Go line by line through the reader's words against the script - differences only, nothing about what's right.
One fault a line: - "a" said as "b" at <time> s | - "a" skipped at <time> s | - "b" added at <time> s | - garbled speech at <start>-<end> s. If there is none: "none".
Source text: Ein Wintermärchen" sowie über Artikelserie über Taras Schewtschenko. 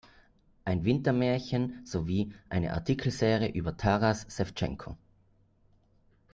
- "über" said as "eine" at 2.5 s